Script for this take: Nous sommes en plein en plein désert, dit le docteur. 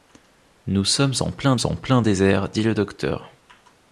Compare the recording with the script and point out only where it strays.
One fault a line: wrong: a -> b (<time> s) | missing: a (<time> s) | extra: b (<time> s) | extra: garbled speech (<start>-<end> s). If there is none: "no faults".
no faults